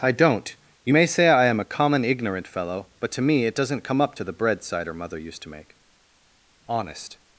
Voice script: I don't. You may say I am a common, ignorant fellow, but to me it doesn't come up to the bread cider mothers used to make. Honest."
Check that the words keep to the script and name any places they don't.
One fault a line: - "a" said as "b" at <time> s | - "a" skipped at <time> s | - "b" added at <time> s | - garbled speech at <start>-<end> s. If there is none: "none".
- "mothers" said as "mother" at 4.9 s